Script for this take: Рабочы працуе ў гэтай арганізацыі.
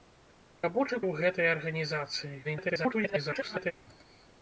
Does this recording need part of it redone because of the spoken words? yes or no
yes